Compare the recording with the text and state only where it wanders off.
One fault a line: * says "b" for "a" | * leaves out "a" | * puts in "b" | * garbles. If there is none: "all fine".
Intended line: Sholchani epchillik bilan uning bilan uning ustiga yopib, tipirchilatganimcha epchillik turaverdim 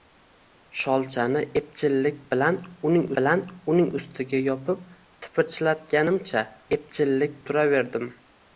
all fine